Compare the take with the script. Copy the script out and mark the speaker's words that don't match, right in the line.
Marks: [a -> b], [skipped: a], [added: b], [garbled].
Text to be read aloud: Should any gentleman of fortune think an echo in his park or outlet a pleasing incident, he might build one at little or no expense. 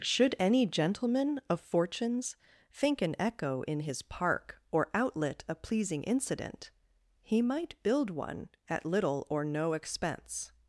Should any gentleman of [fortune -> fortunes] think an echo in his park or outlet a pleasing incident, he might build one at little or no expense.